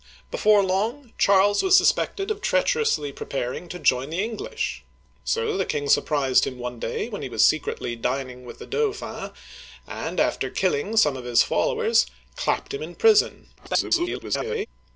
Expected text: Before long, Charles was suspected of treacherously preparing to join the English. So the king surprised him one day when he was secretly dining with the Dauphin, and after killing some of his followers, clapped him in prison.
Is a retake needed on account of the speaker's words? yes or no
yes